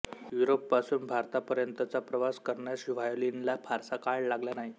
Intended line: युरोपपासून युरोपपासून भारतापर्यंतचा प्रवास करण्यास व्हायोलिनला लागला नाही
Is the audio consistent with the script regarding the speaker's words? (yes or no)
no